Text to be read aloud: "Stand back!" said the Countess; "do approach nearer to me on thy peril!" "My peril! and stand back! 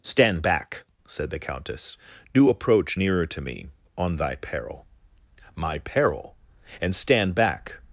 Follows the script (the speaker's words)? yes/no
yes